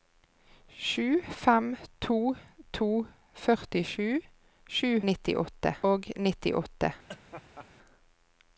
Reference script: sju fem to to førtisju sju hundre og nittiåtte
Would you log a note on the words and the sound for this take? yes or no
yes